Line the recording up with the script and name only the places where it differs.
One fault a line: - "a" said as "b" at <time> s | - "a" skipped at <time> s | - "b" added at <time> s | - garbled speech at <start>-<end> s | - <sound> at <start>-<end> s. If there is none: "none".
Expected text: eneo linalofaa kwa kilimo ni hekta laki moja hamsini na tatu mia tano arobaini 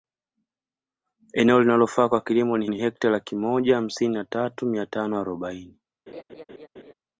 - "ni" added at 2.7 s
- laugh at 6.1-6.9 s